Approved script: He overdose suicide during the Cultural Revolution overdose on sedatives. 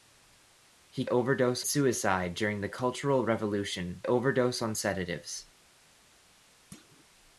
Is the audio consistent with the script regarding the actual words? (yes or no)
yes